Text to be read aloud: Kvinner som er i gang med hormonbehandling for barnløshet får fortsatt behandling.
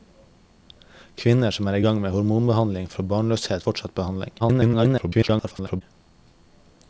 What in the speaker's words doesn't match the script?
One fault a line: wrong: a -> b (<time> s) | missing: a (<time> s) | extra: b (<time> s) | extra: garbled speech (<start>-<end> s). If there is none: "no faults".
missing: får (3.7 s)
extra: garbled speech (4.4-5.8 s)